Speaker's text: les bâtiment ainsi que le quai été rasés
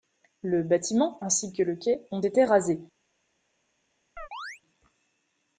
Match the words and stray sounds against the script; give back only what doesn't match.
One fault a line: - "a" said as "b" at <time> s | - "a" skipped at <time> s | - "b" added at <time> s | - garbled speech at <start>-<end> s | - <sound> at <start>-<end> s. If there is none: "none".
- "les" said as "le" at 0.4 s
- "ont" added at 2.1 s
- chirp at 4.2-4.6 s